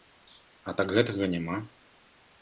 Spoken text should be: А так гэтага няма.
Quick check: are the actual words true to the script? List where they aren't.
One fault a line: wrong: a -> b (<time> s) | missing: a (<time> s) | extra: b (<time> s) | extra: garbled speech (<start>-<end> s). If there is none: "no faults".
no faults